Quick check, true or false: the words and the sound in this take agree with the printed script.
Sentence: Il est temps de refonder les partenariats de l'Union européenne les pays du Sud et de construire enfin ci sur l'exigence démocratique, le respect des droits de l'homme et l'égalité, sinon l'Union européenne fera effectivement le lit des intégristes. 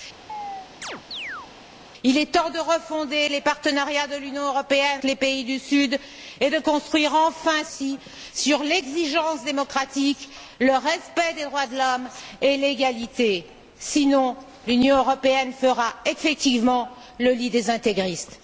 false